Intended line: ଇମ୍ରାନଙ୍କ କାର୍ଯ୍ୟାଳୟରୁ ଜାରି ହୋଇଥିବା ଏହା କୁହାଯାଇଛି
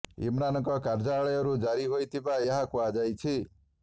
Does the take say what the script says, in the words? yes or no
yes